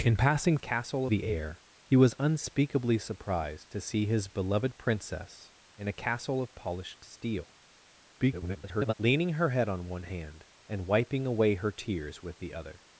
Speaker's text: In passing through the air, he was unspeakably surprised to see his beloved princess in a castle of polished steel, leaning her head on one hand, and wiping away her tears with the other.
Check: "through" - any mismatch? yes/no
yes